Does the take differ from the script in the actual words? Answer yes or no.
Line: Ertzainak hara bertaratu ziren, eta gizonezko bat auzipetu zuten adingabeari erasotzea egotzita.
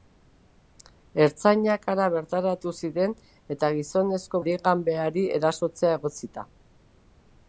yes